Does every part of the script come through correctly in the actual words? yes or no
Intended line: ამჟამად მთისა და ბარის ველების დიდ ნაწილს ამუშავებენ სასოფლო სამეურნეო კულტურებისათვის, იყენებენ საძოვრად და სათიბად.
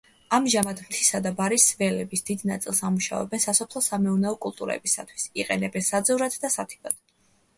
yes